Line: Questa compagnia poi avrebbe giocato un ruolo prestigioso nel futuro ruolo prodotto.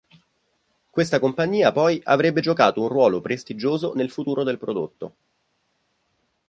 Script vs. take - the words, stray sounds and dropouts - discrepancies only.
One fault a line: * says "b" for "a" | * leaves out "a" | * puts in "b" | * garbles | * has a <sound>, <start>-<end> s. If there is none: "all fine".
* says "del" for "ruolo"